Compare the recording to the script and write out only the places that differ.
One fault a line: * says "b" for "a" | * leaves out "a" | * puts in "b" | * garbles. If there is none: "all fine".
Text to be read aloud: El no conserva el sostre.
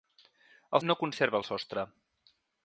all fine